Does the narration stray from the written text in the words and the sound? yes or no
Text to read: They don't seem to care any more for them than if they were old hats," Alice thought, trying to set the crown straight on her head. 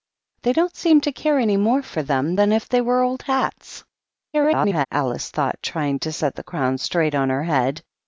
yes